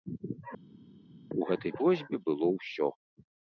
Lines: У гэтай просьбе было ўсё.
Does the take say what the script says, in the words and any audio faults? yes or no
yes